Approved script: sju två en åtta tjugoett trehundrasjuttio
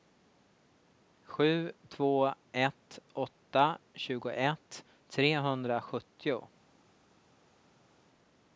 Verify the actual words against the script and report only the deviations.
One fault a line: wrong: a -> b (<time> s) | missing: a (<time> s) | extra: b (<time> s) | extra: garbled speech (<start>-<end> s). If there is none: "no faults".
wrong: en -> ett (2.5 s)